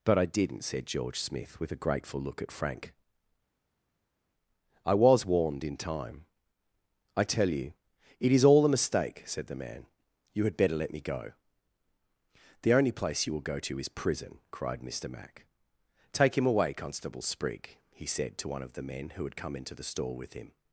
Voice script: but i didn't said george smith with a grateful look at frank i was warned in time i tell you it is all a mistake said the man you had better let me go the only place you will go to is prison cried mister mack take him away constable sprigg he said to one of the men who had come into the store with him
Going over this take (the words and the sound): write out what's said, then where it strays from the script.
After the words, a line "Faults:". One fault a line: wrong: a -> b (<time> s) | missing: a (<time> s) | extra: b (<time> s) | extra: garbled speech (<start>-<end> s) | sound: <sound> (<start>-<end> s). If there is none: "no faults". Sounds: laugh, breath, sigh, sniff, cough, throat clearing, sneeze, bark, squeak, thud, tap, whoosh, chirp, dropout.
but i didn't said george smith with a grateful look at frank i was warned in time i tell you it is all a mistake said the man you had better let me go the only place you will go to is prison cried mister mack take him away constable sprigg he said to one of the men who had come into the store with him
Faults:
no faults